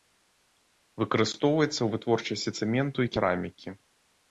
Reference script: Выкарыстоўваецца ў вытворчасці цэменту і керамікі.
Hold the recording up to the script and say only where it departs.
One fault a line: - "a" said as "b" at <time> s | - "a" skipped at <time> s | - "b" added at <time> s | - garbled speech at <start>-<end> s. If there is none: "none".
none